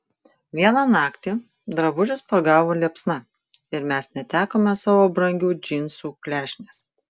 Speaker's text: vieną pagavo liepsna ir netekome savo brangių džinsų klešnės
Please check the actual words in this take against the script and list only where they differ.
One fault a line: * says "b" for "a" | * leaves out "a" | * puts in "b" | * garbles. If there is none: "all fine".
* puts in "naktį drabužius"
* puts in "mes"